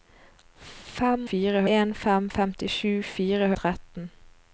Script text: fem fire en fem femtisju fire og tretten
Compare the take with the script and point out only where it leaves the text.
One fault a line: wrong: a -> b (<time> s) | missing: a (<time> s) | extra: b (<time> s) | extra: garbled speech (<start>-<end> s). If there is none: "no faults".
no faults